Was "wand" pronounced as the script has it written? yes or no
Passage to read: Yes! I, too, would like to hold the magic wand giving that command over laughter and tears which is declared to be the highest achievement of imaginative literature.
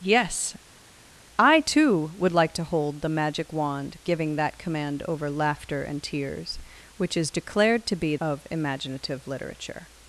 yes